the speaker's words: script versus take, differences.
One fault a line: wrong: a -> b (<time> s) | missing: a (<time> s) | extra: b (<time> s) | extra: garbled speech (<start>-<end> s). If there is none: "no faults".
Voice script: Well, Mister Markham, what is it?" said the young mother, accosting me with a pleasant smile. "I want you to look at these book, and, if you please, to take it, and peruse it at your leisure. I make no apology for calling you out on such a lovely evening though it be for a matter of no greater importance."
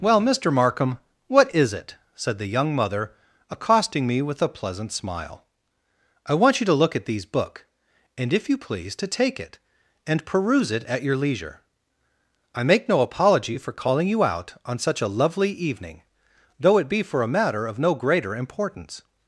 no faults